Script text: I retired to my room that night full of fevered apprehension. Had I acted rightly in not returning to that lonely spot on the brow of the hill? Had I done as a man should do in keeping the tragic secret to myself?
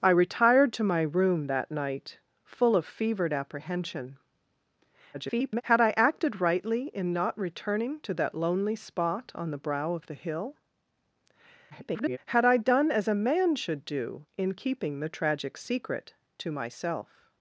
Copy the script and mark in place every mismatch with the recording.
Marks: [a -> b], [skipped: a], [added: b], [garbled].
I retired to my room that night full of fevered apprehension. [garbled] Had I acted rightly in not returning to that lonely spot on the brow of the hill? [garbled] Had I done as a man should do in keeping the tragic secret to myself?